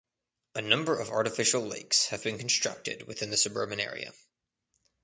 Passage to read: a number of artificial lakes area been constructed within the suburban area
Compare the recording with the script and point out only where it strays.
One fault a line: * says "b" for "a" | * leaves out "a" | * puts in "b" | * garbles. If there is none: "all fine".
* says "have" for "area"